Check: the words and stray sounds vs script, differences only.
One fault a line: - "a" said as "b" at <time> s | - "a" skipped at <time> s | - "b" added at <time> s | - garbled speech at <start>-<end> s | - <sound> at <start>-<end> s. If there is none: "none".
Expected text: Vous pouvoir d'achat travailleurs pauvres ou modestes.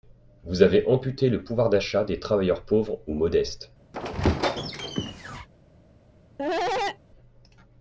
- "avez amputé le" added at 0.6 s
- "des" added at 2.0 s
- squeak at 3.9-5.5 s
- cough at 6.4-7.0 s